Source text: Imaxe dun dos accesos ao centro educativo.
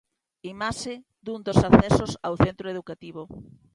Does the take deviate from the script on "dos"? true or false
false